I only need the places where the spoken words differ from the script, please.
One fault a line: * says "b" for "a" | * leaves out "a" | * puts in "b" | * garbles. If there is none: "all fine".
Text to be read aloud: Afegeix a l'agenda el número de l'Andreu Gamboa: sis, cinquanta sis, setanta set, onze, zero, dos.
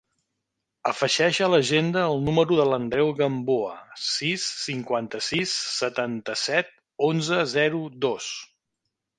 all fine